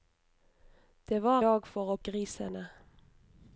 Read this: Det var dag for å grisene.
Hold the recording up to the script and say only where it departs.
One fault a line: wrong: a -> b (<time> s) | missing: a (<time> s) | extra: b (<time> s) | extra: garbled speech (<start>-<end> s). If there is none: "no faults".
no faults